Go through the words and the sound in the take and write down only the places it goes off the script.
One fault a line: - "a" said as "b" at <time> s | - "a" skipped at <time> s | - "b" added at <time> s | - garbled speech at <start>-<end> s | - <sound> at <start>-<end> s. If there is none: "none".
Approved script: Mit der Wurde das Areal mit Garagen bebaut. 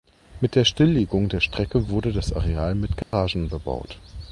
- "Stilllegung der Strecke" added at 0.7 s
- dropout at 3.0-3.1 s